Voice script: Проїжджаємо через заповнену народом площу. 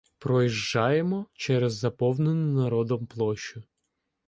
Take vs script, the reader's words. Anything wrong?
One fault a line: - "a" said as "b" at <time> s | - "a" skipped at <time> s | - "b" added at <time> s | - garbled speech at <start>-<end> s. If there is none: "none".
none